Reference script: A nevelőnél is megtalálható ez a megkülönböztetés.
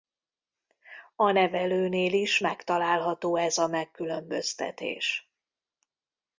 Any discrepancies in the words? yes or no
no